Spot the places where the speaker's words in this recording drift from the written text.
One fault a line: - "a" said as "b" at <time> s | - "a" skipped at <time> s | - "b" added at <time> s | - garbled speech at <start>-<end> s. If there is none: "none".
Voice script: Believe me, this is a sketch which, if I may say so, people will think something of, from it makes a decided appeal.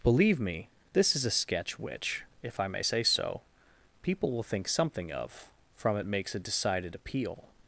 none